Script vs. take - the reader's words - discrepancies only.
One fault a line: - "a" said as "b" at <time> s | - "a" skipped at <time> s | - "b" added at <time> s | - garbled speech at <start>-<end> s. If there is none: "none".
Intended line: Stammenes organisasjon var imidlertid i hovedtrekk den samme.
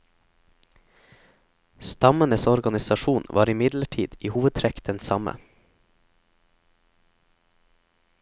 none